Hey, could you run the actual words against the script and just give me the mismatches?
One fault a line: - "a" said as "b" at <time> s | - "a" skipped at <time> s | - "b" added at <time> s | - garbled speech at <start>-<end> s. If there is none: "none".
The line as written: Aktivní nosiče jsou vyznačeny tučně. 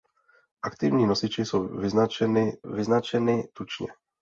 - "vyznačeny" added at 2.6 s